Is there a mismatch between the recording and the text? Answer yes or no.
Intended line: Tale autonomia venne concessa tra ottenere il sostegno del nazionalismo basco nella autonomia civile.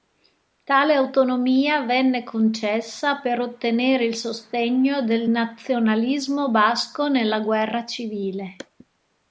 yes